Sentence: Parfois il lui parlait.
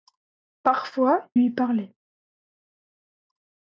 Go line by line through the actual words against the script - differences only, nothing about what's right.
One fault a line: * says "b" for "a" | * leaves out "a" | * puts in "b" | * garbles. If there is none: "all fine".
* leaves out "il"